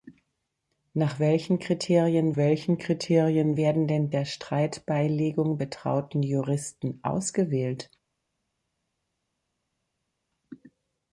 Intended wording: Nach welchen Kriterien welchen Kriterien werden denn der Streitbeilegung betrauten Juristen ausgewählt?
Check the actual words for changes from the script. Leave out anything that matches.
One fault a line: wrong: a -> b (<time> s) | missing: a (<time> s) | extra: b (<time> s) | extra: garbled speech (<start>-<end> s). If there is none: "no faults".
no faults